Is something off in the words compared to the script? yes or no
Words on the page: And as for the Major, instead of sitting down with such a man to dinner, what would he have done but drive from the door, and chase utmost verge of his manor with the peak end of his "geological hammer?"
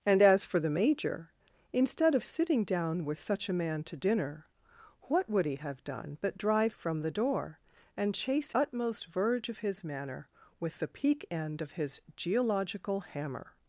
no